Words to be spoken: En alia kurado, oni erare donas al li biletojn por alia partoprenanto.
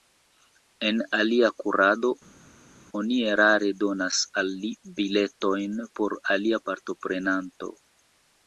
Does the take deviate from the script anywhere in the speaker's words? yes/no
no